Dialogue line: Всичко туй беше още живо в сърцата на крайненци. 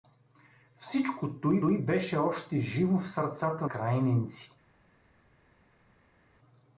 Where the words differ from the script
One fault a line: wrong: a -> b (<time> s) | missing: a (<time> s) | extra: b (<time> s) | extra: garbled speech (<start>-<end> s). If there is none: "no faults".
extra: туй (1.6 s)
missing: на (3.7 s)